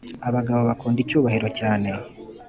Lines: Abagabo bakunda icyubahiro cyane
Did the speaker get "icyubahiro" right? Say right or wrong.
right